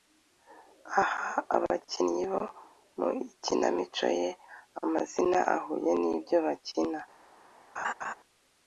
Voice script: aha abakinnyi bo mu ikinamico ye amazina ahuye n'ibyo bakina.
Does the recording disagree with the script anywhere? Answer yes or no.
no